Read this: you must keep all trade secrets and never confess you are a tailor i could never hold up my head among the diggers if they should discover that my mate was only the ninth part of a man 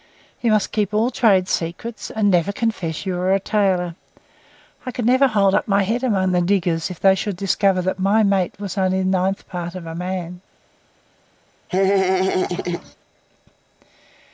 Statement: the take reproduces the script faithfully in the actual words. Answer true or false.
true